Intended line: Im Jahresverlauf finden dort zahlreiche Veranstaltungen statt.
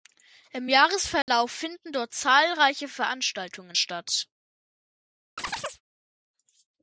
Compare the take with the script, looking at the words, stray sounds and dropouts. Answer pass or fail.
fail